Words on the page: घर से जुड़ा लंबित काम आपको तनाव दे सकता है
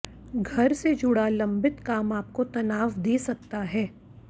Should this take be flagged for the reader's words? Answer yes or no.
no